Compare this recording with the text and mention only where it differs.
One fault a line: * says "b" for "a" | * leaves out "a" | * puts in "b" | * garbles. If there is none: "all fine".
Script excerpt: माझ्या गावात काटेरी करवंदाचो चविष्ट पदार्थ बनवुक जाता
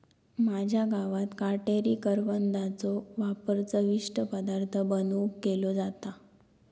* puts in "वापर"
* puts in "केलो"